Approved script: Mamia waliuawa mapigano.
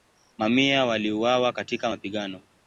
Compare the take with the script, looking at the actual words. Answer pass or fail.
fail